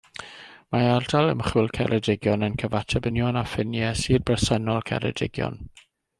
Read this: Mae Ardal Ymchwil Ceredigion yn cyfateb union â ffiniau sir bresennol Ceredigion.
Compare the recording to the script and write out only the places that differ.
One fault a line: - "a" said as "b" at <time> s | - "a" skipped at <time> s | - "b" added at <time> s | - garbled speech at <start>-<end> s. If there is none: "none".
none